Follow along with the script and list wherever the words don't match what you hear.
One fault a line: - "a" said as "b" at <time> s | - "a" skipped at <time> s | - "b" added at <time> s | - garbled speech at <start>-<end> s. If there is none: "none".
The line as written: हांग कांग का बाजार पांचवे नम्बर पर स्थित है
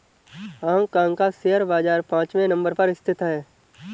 - "शेयर" added at 1.3 s